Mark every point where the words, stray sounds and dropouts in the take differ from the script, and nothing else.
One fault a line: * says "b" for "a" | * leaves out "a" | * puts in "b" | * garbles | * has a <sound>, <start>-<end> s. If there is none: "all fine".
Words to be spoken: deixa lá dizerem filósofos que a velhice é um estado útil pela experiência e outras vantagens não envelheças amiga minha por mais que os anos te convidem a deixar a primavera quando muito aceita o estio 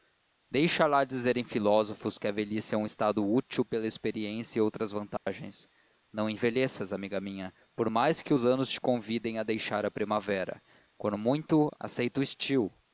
* has a dropout, 5.2-5.3 s